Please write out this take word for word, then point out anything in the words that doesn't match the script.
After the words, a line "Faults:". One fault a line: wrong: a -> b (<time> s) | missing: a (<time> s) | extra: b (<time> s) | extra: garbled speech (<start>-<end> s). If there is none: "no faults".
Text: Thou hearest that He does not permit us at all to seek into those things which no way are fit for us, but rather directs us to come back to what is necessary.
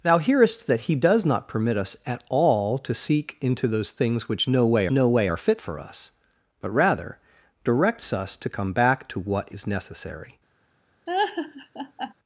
Thou hearest that He does not permit us at all to seek into those things which no way no way are fit for us, but rather directs us to come back to what is necessary.
Faults:
extra: no way (4.9 s)